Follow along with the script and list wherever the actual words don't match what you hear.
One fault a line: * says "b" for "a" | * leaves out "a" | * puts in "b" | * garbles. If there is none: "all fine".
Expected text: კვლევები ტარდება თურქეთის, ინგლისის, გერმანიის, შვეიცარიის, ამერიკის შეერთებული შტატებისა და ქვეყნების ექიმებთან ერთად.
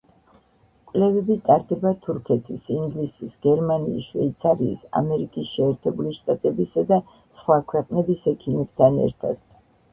* puts in "სხვა"